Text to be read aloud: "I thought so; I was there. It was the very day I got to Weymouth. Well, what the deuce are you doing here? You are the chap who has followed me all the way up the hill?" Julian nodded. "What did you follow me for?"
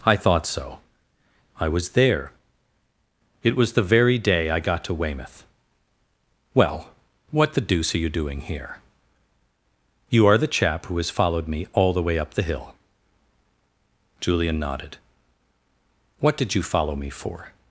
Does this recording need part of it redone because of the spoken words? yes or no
no